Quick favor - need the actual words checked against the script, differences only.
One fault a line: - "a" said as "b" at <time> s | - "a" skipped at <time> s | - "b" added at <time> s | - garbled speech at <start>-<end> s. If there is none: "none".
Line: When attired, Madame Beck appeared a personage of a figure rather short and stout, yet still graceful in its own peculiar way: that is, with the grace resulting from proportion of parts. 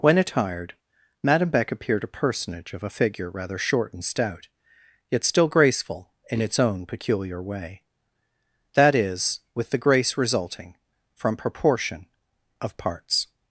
none